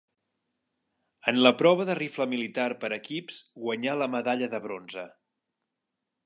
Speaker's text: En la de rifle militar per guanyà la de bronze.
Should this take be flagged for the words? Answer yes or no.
yes